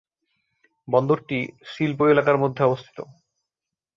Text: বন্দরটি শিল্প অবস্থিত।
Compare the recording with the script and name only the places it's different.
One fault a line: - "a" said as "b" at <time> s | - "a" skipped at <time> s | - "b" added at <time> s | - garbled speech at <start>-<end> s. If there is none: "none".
- "এলাকার মধ্যে" added at 2.1 s